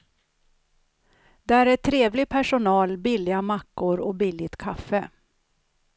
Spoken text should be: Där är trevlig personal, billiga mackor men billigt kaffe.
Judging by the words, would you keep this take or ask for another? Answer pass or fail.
fail